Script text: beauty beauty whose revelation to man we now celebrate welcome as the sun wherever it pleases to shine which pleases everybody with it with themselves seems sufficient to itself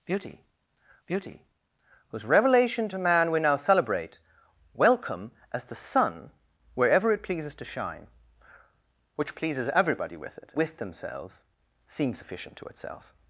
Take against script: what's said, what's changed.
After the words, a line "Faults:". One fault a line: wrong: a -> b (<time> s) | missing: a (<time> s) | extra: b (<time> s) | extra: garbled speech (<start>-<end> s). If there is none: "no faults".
beauty beauty whose revelation to man we now celebrate welcome as the sun wherever it pleases to shine which pleases everybody with it with themselves seems sufficient to itself
Faults:
no faults